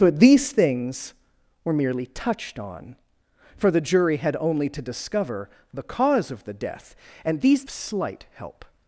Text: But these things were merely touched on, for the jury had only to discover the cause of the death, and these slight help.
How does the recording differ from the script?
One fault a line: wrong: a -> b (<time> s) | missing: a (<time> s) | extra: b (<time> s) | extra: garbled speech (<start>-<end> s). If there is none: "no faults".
no faults